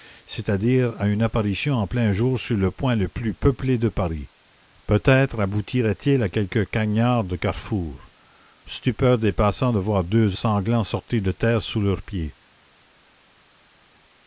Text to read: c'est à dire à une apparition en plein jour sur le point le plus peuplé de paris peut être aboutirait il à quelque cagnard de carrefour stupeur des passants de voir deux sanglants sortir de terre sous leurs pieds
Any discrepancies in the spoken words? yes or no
no